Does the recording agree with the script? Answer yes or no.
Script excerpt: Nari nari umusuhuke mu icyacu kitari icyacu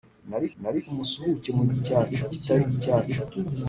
yes